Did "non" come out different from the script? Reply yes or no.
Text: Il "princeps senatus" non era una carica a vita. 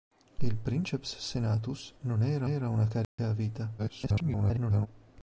no